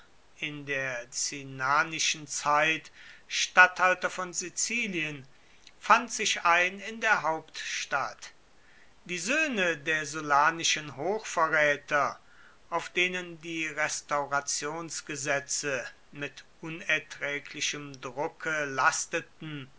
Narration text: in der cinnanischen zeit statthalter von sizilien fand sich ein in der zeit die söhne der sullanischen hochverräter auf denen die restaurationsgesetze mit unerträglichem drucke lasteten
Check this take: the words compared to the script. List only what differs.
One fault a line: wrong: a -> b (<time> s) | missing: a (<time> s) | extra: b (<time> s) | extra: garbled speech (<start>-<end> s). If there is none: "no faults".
wrong: zeit -> hauptstadt (7.2 s)